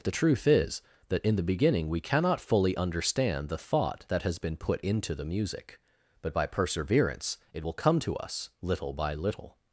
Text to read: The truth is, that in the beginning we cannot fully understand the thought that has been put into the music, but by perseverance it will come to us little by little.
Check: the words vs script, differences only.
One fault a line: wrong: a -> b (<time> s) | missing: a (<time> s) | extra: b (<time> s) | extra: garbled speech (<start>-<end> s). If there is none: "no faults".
no faults